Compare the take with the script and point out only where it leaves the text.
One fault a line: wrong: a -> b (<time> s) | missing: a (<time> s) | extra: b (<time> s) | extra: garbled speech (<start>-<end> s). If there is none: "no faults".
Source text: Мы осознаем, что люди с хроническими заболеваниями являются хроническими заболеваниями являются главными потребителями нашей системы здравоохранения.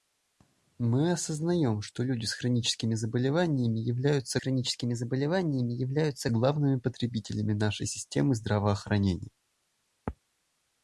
no faults